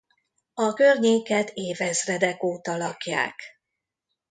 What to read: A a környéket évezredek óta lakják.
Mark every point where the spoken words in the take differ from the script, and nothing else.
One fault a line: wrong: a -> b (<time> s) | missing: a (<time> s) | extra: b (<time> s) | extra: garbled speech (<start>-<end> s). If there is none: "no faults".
missing: a (0.8 s)